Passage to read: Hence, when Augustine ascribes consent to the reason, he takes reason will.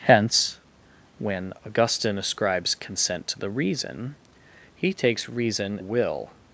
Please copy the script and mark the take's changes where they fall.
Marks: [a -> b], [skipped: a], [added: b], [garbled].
Hence, when Augustine ascribes consent to the reason, he takes reason will.